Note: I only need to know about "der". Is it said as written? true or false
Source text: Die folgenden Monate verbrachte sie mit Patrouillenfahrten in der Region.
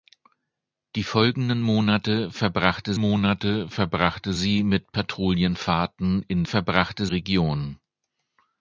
false